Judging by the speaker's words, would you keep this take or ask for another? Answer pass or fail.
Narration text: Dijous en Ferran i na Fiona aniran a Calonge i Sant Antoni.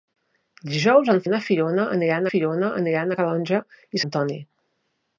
fail